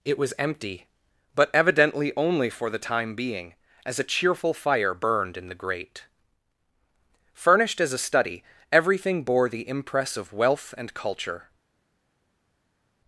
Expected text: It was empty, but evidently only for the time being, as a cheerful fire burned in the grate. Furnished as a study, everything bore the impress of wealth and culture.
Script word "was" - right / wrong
right